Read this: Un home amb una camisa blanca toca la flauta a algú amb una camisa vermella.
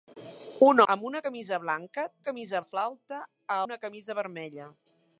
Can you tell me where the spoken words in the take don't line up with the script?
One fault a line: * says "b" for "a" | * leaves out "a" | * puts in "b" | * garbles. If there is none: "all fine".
* leaves out "home"
* says "camisa" for "toca"
* leaves out "algú amb"